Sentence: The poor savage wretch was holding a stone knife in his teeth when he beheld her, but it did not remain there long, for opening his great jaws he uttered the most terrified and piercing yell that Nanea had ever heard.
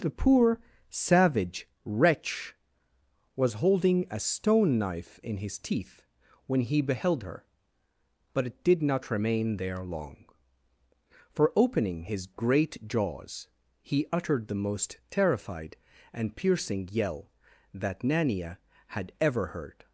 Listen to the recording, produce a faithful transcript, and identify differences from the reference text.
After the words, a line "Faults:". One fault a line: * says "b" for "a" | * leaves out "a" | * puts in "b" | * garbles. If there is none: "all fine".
The poor savage wretch was holding a stone knife in his teeth when he beheld her, but it did not remain there long, for opening his great jaws he uttered the most terrified and piercing yell that Nanea had ever heard.
Faults:
all fine